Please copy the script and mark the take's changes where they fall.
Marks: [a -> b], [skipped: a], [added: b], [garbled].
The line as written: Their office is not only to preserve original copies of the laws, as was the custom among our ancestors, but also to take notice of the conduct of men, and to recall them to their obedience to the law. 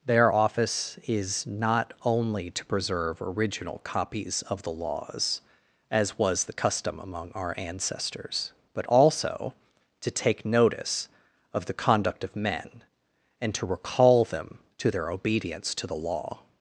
Their office is not only to preserve original copies of the laws, as was the custom among our ancestors, but also to take notice of the conduct of men, and to recall them to their obedience to the law.